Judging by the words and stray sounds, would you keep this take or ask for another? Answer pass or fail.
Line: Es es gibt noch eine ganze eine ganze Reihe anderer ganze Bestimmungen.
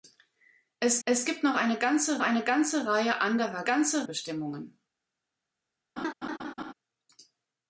fail